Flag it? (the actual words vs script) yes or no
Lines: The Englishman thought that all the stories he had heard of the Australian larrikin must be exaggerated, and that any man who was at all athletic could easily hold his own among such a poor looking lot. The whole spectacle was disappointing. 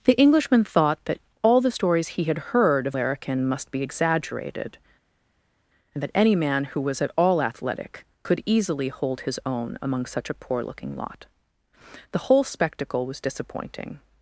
yes